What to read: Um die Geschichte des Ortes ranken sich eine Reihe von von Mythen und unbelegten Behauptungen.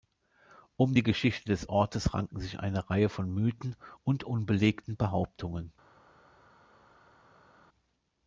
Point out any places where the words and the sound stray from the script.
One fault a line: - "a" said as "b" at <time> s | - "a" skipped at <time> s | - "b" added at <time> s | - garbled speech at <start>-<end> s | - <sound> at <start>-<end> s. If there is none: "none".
- "von" skipped at 3.3 s